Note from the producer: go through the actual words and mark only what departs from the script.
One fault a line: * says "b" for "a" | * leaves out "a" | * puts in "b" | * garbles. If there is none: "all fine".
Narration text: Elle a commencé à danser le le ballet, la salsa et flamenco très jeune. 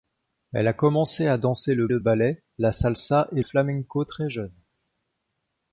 all fine